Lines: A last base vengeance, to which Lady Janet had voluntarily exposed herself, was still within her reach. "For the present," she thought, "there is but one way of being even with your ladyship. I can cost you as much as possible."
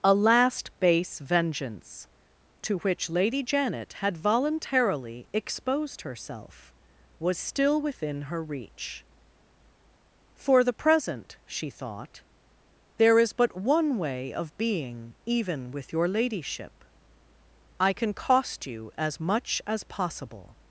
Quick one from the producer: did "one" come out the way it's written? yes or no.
yes